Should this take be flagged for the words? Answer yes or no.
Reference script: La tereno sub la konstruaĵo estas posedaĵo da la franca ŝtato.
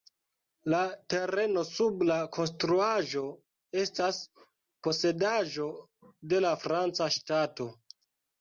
yes